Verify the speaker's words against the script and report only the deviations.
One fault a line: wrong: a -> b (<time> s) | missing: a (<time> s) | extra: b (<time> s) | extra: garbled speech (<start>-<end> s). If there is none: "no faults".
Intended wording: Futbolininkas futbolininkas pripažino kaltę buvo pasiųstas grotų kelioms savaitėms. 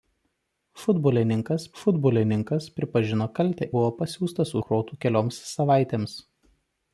no faults